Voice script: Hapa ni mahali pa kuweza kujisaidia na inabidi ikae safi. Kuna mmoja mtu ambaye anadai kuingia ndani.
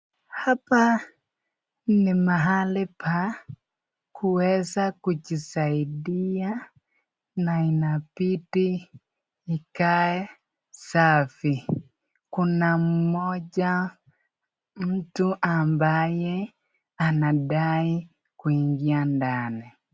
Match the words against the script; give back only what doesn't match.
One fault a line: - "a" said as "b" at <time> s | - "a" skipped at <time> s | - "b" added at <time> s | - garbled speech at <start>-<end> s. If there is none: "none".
none